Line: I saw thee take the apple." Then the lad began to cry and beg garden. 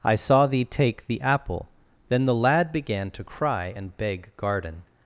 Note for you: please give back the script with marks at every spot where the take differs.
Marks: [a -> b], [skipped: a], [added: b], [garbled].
I saw thee take the apple." Then the lad began to cry and beg garden.